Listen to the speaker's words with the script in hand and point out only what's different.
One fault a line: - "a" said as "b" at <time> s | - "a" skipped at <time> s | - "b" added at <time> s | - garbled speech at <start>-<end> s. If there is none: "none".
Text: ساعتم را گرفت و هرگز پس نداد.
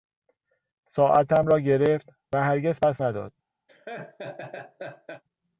none